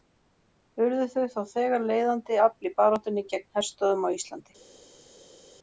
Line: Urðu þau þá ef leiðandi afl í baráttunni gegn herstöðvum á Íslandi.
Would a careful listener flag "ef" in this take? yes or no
yes